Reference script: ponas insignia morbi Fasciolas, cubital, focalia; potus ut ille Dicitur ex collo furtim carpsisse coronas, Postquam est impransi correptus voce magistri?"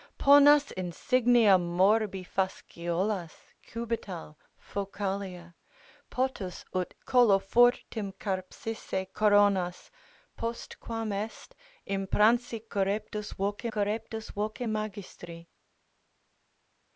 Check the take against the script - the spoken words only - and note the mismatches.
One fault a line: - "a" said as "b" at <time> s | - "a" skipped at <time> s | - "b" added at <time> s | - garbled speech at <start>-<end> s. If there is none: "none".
- "ille Dicitur ex" skipped at 7.0 s
- "correptus voce" added at 13.7 s